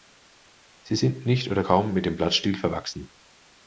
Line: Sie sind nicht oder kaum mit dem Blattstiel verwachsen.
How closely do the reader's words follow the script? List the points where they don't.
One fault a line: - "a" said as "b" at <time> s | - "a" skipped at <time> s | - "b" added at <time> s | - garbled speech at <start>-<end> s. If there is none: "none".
none